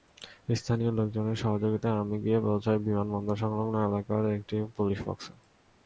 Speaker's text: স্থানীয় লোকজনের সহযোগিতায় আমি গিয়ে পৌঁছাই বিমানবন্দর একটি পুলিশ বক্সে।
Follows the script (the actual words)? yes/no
no